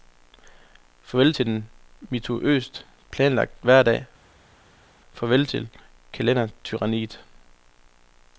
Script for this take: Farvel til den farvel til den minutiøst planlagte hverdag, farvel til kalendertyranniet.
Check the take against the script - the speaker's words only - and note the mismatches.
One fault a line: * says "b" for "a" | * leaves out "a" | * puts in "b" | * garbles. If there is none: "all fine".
* leaves out "farvel til den"